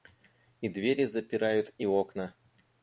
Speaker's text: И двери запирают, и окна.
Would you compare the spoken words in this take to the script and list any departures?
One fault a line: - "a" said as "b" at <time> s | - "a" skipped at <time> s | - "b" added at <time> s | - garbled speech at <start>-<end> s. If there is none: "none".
none